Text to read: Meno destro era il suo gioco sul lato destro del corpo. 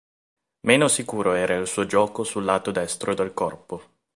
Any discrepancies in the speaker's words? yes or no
yes